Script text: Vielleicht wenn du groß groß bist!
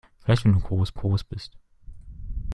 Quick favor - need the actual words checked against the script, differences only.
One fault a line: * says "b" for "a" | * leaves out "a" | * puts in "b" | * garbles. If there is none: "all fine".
all fine